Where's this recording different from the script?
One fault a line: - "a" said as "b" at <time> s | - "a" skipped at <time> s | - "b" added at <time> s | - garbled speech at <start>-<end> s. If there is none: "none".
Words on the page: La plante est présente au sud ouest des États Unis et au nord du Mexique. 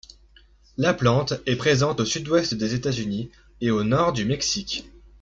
none